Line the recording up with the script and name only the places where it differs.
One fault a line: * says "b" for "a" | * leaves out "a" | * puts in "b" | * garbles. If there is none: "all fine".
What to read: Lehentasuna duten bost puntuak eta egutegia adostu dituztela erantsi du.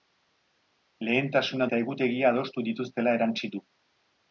* leaves out "duten bost puntuak"